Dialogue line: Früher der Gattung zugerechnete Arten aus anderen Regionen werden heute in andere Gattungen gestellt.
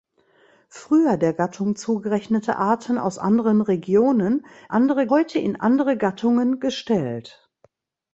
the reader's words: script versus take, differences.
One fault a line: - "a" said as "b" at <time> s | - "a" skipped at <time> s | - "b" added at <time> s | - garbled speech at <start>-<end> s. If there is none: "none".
- "werden" said as "andere" at 4.7 s